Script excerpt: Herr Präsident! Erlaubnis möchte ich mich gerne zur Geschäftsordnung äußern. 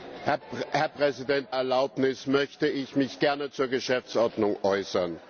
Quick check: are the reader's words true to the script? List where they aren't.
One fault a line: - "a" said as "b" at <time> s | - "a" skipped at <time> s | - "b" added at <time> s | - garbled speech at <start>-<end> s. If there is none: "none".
none